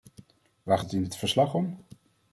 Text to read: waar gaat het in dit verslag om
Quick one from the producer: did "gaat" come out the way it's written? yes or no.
no